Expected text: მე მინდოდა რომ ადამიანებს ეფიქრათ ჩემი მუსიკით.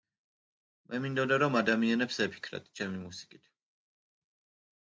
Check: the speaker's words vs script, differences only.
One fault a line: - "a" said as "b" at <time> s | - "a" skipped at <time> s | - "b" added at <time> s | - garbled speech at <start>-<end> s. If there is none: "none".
none